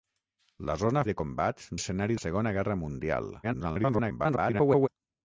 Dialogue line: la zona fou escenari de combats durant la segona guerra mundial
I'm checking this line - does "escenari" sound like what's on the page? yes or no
no